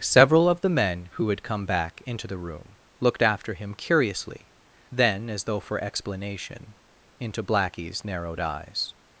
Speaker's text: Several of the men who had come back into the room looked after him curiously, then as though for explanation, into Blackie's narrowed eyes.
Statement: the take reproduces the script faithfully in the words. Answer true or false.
true